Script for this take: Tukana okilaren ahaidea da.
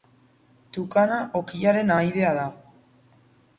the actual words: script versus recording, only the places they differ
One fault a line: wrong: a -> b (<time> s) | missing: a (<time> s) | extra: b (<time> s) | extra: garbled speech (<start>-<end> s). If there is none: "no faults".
no faults